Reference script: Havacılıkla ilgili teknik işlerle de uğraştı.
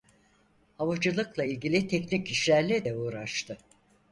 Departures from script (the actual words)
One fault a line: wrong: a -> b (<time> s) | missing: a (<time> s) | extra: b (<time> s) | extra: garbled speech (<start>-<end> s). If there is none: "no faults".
no faults